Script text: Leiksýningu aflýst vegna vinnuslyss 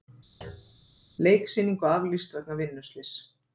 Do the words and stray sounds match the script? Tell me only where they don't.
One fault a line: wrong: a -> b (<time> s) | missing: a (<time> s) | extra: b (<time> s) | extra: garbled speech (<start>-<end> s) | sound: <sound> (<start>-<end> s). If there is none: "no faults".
sound: thud (0.4-0.9 s)